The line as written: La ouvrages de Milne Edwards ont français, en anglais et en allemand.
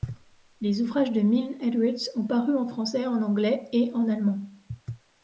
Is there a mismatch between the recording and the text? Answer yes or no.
yes